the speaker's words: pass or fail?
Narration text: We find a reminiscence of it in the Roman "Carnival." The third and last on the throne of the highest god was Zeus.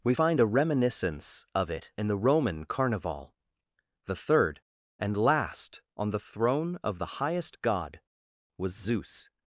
pass